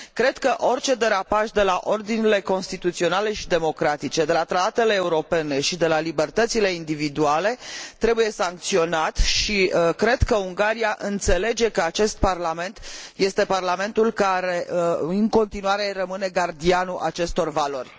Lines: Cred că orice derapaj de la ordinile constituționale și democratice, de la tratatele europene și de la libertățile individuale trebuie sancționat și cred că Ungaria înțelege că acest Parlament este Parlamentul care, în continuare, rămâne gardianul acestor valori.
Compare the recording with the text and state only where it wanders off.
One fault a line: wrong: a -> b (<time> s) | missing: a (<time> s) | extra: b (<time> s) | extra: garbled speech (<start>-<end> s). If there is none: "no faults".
no faults